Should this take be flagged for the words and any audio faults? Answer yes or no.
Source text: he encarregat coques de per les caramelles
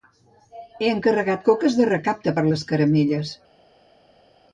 yes